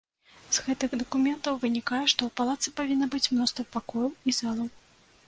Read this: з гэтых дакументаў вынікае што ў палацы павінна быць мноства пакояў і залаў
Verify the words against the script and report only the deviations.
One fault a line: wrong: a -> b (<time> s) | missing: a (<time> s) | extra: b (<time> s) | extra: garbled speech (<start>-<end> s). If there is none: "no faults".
no faults